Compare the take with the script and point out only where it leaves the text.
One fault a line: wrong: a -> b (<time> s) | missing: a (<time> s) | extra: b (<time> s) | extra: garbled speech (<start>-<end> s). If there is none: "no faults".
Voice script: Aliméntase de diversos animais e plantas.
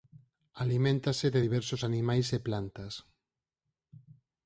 no faults